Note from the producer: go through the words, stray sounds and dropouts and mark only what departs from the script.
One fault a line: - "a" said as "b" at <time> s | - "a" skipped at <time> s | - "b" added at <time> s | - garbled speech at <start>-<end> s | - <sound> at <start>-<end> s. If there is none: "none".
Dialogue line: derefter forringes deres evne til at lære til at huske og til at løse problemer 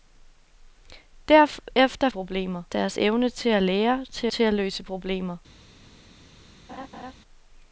- "forringes" said as "problemer" at 2.1 s
- "at huske og" skipped at 4.3 s
- laugh at 6.7-7.1 s